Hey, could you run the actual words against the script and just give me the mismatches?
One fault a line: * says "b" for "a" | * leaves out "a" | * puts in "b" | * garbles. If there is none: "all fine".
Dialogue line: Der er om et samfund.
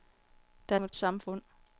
all fine